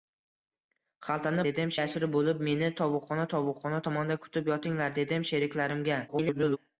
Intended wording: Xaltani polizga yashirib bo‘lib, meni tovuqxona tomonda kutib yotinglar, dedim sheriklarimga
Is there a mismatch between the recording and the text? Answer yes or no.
yes